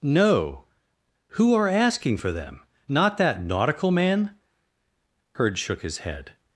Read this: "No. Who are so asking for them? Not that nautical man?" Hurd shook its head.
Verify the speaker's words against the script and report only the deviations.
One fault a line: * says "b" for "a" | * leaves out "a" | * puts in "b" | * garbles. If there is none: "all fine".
* leaves out "so"
* says "his" for "its"